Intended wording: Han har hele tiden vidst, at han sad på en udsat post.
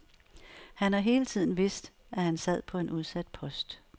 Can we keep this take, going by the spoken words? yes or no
yes